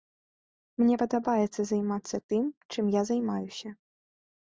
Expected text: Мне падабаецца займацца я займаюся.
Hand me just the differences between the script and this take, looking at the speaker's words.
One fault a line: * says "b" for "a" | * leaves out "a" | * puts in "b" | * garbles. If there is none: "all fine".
* puts in "тым чым"